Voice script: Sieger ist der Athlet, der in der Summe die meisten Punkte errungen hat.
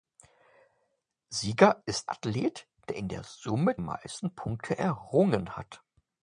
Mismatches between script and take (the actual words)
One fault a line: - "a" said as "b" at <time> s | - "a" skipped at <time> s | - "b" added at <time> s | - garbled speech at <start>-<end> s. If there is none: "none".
- "der" skipped at 2.1 s
- "die" skipped at 3.8 s